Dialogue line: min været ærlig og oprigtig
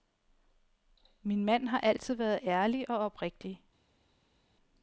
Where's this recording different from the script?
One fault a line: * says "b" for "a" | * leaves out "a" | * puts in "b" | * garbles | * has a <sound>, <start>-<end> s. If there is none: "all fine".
* puts in "mand har altid"